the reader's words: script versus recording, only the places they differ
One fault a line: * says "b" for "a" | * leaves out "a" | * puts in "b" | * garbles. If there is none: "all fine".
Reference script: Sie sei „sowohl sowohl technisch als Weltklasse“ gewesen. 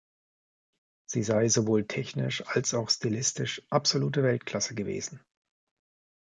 * leaves out "sowohl"
* puts in "auch stilistisch absolute"